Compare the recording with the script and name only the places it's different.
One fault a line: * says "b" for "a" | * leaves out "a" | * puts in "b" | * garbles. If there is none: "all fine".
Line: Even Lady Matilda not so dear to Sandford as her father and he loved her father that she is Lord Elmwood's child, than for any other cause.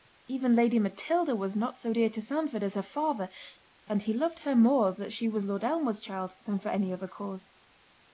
* puts in "was"
* says "more" for "father"
* says "was" for "is"